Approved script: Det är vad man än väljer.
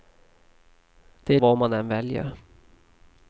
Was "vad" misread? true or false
false